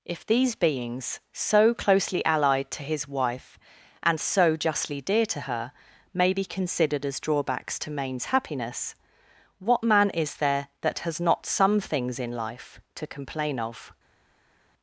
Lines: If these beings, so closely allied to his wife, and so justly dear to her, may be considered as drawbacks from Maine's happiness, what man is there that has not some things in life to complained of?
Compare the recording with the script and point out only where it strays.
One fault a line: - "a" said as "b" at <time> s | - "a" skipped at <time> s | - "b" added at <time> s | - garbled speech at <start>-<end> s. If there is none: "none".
- "from" said as "to" at 7.8 s
- "complained" said as "complain" at 13.1 s